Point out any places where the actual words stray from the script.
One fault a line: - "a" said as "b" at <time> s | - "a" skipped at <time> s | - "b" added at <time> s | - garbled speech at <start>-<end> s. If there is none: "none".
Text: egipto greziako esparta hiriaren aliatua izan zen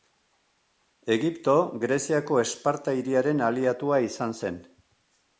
none